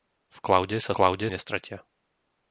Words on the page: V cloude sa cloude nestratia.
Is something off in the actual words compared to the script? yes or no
no